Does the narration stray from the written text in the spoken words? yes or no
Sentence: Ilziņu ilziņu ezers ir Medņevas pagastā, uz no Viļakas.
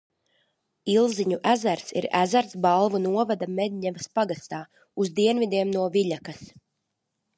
yes